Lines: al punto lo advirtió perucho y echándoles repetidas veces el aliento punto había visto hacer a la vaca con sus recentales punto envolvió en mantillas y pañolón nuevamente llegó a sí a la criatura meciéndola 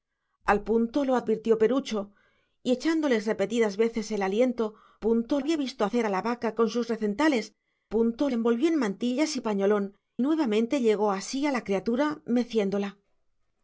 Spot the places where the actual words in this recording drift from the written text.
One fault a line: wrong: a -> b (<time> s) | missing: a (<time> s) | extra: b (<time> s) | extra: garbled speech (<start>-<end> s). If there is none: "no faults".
no faults